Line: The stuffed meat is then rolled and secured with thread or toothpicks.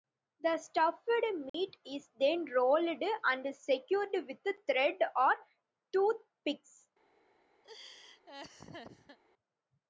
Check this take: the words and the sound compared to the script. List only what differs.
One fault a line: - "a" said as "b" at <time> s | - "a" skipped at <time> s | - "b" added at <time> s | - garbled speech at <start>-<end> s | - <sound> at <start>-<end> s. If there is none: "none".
- dropout at 1.5-1.5 s
- laugh at 7.6-9.2 s